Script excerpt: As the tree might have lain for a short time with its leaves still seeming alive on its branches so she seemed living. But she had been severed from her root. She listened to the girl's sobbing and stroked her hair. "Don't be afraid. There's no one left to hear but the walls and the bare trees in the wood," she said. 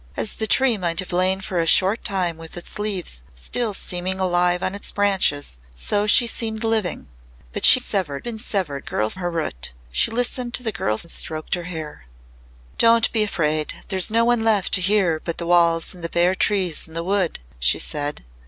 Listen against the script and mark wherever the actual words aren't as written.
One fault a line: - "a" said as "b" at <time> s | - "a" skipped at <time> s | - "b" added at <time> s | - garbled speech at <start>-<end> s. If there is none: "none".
- "had" said as "severed" at 7.8 s
- "from" said as "girl's" at 8.8 s
- "sobbing" skipped at 11.0 s